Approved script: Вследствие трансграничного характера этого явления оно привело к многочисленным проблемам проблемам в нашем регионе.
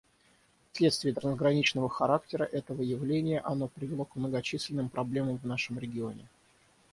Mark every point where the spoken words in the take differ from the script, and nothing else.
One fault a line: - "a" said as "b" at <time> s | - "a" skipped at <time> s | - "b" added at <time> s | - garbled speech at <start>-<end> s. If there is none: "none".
- "проблемам" skipped at 5.4 s